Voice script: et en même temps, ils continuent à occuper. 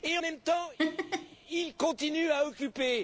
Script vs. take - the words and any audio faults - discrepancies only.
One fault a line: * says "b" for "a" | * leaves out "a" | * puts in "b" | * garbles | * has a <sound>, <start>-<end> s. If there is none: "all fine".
* leaves out "en"
* has a laugh, 0.8-1.4 s